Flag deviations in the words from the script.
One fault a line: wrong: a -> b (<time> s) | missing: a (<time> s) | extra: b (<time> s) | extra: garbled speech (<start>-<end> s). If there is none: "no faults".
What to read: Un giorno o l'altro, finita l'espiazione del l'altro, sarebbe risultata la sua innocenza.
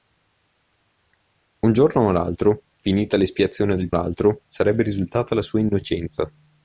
no faults